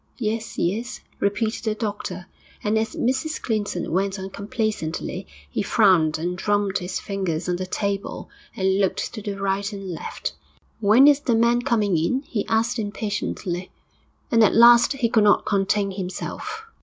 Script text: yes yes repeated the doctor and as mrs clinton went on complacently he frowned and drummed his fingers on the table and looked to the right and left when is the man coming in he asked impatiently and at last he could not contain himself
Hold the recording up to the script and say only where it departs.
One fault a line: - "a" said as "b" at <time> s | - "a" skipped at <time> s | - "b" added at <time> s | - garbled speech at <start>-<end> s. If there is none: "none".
none